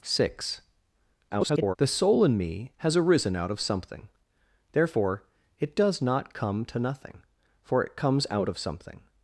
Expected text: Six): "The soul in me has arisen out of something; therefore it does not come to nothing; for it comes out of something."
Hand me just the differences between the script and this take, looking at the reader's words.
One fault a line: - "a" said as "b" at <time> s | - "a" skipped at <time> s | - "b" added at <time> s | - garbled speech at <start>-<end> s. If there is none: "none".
- garbled speech at 1.3-1.8 s